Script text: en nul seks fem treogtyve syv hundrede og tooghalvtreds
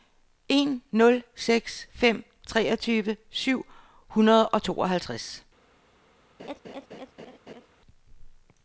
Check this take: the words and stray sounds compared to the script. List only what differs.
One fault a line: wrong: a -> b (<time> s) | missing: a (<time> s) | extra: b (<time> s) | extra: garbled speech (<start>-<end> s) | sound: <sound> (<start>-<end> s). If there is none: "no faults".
sound: laugh (6.4-7.7 s)